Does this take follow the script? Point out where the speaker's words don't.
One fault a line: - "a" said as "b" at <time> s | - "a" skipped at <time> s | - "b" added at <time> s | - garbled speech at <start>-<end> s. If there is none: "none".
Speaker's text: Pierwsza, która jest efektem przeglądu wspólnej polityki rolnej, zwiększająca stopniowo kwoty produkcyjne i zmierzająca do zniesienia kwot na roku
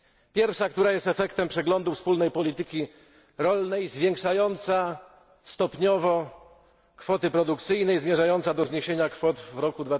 - "na" said as "w" at 9.4 s